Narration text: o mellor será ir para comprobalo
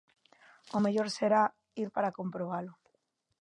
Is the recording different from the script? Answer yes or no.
no